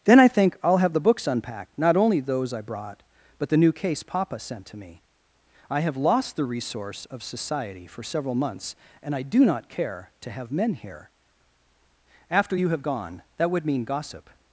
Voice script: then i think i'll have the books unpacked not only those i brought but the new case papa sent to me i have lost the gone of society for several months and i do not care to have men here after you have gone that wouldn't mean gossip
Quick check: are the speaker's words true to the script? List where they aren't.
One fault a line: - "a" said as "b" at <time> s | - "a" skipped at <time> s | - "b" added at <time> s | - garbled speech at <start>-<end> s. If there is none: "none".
- "gone" said as "resource" at 6.5 s
- "wouldn't" said as "would" at 13.5 s